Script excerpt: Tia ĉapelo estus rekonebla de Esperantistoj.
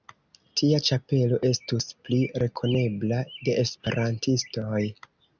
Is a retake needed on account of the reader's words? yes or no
yes